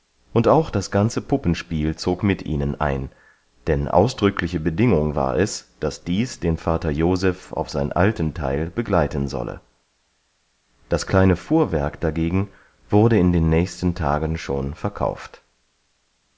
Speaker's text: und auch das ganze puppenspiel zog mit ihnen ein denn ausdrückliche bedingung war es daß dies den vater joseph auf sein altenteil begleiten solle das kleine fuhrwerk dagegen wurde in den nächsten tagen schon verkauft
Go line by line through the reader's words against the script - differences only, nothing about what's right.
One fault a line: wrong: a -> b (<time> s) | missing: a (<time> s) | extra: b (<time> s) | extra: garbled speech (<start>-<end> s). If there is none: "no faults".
no faults